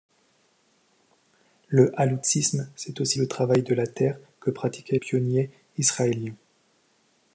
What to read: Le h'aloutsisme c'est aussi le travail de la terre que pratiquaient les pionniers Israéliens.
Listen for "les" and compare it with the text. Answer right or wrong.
wrong